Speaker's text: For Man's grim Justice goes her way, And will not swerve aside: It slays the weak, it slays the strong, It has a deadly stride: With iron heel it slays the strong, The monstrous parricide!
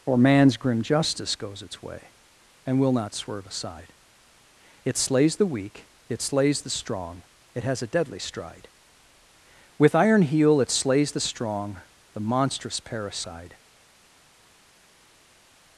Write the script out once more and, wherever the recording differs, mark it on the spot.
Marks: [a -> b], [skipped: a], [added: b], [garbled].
For Man's grim Justice goes [her -> its] way, And will not swerve aside: It slays the weak, it slays the strong, It has a deadly stride: With iron heel it slays the strong, The monstrous parricide!